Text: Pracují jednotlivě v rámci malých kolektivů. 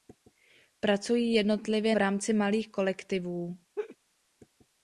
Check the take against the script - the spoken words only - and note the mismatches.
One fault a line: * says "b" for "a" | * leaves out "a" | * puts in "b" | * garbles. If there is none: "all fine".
all fine